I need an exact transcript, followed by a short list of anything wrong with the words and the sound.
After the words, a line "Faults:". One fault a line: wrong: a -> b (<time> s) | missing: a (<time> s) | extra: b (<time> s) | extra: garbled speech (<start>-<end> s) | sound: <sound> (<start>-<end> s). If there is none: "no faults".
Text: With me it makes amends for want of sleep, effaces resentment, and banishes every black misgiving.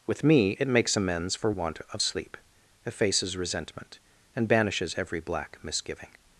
With me it makes amends for want of sleep, effaces resentment, and banishes every black misgiving.
Faults:
no faults